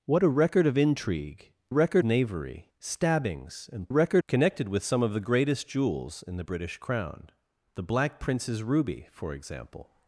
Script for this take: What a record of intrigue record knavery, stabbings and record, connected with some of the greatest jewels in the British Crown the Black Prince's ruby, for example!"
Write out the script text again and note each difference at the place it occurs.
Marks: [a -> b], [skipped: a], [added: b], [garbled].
What a record of intrigue record knavery, stabbings and record, connected with some of the greatest jewels in the British Crown the Black Prince's ruby, for example!"